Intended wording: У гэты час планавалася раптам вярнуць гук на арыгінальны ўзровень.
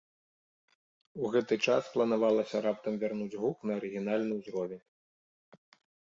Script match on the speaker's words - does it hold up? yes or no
yes